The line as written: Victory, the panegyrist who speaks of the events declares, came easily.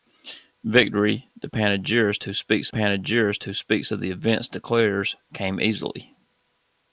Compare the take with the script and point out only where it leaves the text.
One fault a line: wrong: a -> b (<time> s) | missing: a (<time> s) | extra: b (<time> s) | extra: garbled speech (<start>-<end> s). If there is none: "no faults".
extra: panegyrist who speaks (2.7 s)